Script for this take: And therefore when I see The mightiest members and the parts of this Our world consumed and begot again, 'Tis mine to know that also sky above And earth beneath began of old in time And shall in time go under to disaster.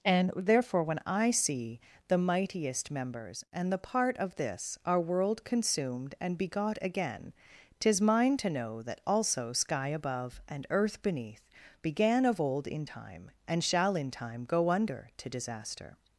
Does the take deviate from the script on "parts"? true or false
true